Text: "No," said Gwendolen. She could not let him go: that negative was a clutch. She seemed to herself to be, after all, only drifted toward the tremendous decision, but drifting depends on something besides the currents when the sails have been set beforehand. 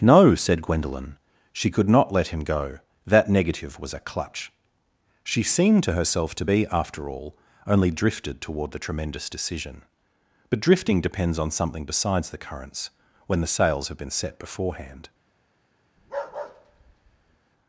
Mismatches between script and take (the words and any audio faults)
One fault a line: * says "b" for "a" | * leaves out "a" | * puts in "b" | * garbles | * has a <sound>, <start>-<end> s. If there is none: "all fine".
* has a bark, 16.0-17.4 s